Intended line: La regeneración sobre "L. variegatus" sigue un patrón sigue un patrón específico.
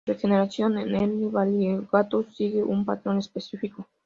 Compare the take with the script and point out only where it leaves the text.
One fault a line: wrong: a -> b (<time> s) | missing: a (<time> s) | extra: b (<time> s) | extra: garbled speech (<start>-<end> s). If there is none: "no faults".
wrong: sobre -> en (0.8 s)
missing: sigue un patrón (3.2 s)